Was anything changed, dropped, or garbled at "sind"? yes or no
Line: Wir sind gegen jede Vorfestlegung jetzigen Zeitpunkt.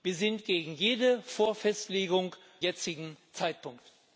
no